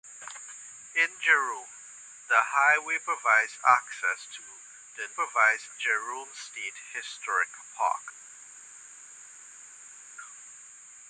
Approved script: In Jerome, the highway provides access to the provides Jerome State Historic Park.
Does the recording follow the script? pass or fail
pass